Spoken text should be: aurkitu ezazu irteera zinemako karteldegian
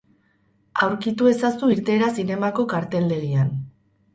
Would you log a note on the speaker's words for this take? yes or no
no